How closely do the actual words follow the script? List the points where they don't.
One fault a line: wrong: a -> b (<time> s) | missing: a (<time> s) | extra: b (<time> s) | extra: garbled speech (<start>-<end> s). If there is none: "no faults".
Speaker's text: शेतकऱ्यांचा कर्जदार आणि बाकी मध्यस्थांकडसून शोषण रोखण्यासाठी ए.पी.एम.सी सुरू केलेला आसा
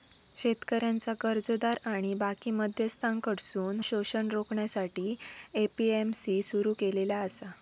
no faults